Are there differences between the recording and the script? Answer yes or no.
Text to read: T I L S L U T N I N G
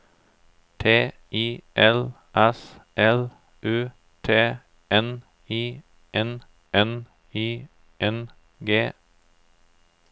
yes